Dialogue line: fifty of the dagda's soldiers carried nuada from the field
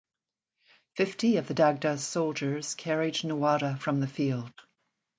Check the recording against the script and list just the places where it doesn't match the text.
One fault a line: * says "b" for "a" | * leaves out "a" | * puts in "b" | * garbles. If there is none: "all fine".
all fine